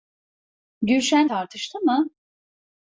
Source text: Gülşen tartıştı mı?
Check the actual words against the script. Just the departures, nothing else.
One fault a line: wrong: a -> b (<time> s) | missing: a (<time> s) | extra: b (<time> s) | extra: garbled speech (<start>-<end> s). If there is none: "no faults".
no faults